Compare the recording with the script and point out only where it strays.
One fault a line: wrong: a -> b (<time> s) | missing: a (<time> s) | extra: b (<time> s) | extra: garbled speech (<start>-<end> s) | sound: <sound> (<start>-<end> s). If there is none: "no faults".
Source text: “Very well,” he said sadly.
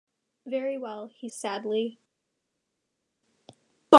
missing: said (1.3 s)